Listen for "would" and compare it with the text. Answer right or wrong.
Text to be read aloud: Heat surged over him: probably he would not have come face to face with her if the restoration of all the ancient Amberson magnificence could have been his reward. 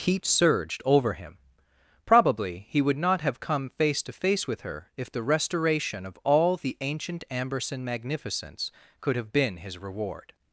right